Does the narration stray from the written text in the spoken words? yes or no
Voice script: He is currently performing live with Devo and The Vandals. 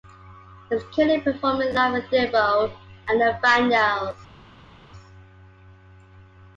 no